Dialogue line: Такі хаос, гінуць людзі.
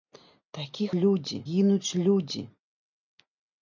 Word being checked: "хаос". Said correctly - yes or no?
no